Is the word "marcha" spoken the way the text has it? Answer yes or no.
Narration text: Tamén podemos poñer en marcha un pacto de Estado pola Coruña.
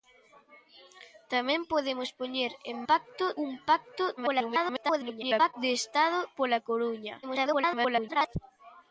no